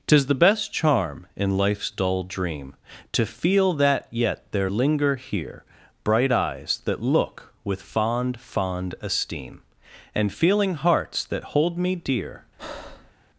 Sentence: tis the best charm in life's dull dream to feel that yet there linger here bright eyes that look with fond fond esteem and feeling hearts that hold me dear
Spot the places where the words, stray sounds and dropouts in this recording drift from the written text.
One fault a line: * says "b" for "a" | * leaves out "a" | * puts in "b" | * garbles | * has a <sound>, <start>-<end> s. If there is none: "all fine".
* has a breath, 12.6-13.1 s